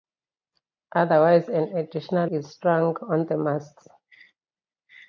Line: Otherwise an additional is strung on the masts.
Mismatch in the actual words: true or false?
false